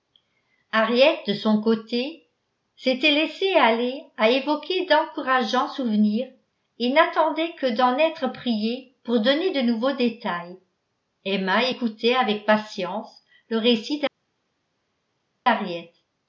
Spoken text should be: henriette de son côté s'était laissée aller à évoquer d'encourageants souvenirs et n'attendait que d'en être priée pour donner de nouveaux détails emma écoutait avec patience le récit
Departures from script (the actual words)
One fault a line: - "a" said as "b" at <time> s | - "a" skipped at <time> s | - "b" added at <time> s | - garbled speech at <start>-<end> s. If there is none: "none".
none